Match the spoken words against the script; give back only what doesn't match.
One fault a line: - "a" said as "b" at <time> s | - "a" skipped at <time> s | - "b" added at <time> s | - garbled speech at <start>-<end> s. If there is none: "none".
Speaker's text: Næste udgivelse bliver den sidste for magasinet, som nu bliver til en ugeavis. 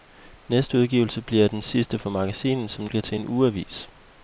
- "nu" skipped at 2.9 s